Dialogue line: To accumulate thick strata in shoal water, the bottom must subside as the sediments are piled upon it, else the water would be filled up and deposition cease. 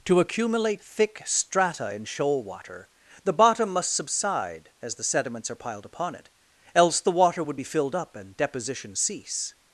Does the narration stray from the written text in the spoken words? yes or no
no